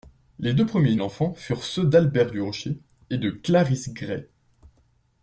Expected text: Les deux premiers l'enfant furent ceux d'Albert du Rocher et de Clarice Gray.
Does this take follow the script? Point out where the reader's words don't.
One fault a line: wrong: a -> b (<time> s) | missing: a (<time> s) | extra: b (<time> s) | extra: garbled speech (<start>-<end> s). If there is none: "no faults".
no faults